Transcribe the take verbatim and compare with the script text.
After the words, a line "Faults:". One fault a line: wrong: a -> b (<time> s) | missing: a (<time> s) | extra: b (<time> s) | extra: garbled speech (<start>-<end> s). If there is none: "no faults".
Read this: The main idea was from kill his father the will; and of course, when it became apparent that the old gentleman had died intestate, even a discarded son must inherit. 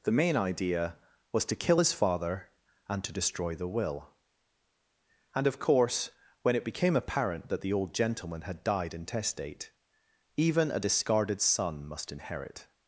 The main idea was to kill his father and to destroy the will; and of course, when it became apparent that the old gentleman had died intestate, even a discarded son must inherit.
Faults:
wrong: from -> to (1.4 s)
extra: and to destroy (2.9 s)